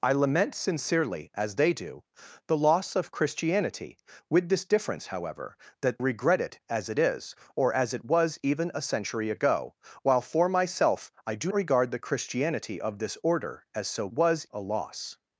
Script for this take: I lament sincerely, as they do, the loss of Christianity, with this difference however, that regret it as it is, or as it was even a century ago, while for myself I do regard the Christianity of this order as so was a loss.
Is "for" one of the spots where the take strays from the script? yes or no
no